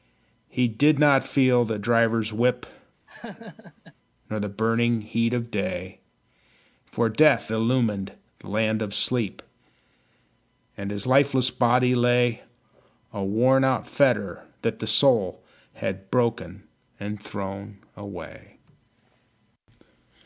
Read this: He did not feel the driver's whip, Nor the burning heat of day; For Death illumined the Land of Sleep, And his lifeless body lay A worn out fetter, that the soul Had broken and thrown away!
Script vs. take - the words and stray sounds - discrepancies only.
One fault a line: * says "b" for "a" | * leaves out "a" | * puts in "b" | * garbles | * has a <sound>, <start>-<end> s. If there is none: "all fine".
* has a laugh, 3.1-3.9 s